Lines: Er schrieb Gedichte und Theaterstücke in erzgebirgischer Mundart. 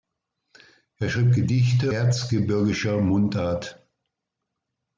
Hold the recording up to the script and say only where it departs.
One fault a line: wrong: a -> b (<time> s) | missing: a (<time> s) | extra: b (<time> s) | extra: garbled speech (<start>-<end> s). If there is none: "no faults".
missing: und Theaterstücke in (1.9 s)